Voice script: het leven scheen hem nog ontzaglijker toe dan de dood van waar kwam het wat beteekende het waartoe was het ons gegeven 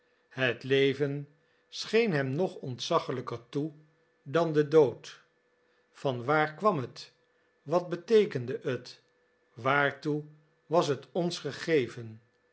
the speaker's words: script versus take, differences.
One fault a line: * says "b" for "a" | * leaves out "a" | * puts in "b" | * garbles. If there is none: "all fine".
all fine